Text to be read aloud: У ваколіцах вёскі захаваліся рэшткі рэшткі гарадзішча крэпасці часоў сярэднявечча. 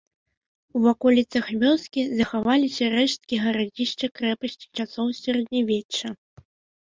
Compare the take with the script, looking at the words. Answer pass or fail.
fail